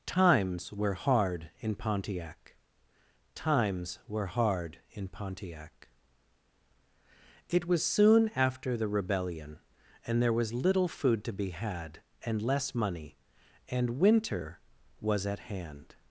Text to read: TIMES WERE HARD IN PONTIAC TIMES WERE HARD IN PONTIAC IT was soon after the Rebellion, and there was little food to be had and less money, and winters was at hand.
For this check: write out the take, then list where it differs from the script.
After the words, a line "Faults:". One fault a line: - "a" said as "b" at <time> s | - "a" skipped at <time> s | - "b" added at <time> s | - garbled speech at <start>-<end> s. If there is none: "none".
TIMES WERE HARD IN PONTIAC TIMES WERE HARD IN PONTIAC IT was soon after the Rebellion, and there was little food to be had and less money, and winter was at hand.
Faults:
- "winters" said as "winter" at 14.0 s